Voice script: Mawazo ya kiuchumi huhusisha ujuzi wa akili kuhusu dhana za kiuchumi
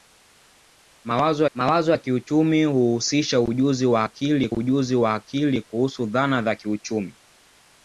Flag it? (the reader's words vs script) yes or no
yes